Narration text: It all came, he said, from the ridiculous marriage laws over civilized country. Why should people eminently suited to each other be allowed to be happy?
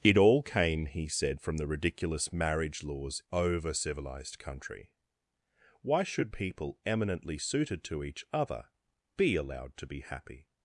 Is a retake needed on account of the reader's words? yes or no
no